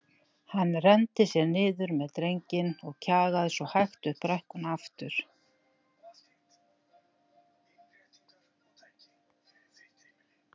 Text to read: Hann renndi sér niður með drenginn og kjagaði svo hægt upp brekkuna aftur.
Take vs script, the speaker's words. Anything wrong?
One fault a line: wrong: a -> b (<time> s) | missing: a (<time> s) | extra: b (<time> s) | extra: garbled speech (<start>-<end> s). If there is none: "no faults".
no faults